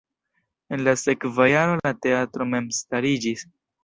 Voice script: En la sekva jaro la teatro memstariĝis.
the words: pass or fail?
pass